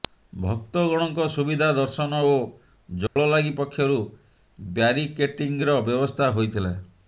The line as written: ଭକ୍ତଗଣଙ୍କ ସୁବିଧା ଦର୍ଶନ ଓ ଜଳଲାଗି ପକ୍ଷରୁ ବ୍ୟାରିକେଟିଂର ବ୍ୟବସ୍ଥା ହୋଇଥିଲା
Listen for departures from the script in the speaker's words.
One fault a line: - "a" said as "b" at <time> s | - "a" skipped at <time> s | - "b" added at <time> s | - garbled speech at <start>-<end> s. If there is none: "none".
none